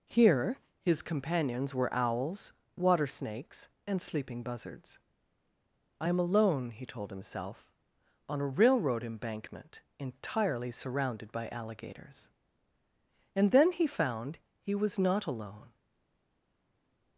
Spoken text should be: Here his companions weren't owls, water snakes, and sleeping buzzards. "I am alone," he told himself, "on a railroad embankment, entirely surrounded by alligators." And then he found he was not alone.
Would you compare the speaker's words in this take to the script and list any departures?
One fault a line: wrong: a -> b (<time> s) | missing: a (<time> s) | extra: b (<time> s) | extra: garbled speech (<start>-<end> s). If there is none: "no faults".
wrong: weren't -> were (1.8 s)